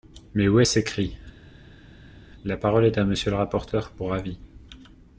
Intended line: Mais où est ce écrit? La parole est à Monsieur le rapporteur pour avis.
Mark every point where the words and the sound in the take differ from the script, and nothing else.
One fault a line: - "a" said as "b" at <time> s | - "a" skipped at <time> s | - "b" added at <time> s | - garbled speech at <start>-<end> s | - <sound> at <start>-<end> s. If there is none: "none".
none